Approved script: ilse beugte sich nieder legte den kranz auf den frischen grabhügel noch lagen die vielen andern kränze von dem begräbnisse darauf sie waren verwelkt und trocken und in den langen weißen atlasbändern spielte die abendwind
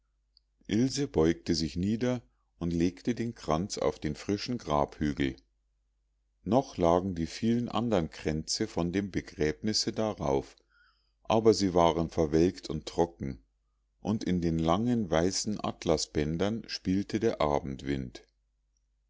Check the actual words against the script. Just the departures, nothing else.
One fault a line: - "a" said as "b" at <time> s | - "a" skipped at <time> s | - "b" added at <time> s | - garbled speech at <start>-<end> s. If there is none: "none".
- "und" added at 2.6 s
- "aber" added at 11.2 s
- "die" said as "der" at 17.2 s